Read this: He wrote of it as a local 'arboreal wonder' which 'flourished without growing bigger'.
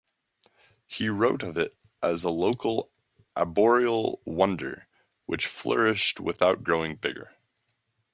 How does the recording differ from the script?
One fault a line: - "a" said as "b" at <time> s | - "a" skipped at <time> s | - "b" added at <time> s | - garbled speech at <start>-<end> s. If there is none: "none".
none